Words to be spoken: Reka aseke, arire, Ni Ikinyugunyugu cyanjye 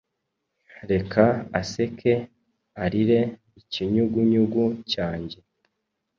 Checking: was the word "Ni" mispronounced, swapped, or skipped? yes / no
yes